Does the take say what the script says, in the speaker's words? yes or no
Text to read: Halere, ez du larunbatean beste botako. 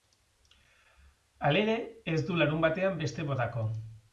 yes